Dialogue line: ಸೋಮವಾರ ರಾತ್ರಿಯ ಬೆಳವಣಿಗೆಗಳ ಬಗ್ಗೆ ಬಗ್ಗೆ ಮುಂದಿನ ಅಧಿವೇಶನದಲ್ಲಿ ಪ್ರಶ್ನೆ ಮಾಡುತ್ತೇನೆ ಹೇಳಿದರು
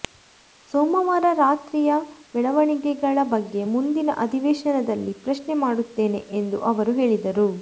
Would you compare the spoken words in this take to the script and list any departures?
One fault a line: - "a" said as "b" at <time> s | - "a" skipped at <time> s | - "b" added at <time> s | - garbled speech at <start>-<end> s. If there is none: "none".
- "ಬಗ್ಗೆ" skipped at 3.6 s
- "ಎಂದು ಅವರು" added at 6.4 s